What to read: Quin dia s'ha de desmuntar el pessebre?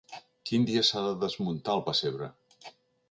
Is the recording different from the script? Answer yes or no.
no